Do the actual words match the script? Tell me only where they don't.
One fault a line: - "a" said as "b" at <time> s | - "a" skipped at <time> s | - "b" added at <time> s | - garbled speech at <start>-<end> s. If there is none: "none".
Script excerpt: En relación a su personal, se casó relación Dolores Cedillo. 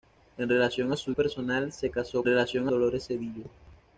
none